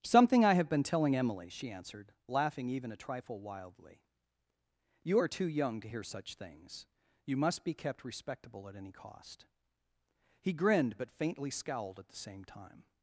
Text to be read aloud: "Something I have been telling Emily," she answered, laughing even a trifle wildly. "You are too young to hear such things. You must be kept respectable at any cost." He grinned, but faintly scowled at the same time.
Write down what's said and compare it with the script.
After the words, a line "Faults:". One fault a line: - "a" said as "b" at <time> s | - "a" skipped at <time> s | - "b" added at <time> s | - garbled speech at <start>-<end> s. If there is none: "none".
"Something I have been telling Emily," she answered, laughing even a trifle wildly. "You are too young to hear such things. You must be kept respectable at any cost." He grinned, but faintly scowled at the same time.
Faults:
none